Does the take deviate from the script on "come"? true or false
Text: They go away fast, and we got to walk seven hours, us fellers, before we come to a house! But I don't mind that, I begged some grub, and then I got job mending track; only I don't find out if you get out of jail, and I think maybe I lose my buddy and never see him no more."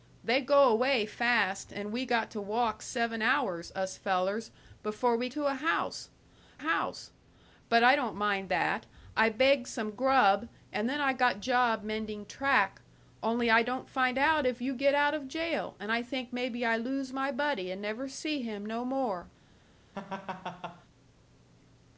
true